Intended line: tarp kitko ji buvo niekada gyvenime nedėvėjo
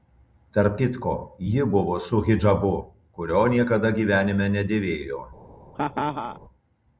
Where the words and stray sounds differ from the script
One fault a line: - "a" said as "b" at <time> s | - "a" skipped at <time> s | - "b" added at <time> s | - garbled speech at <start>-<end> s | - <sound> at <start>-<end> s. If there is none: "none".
- "su hidžabu kurio" added at 2.1 s
- laugh at 5.7-6.4 s